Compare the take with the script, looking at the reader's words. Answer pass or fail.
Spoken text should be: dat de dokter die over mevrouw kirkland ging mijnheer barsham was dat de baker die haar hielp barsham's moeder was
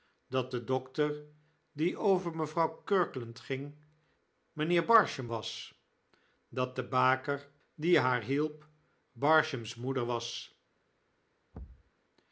pass